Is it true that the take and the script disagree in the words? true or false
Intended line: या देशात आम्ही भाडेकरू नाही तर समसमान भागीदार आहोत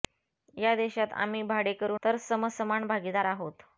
true